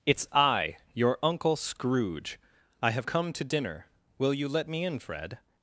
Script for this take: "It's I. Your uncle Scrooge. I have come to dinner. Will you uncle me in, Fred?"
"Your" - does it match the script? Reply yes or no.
yes